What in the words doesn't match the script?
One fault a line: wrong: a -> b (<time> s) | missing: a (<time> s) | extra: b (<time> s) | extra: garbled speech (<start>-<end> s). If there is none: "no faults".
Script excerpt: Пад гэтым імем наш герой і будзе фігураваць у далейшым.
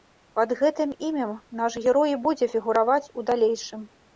no faults